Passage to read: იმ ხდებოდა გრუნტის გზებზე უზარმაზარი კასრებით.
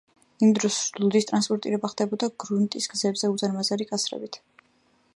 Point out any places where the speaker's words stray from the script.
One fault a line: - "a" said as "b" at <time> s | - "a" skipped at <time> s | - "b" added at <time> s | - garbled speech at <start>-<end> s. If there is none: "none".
- "დროს ლუდის ტრანსპორტირება" added at 0.6 s